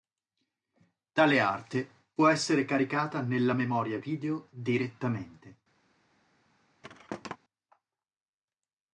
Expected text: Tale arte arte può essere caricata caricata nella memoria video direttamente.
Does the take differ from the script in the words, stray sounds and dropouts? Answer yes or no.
yes